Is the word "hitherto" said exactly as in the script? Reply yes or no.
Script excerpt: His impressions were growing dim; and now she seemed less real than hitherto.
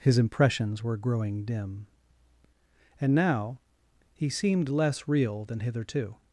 yes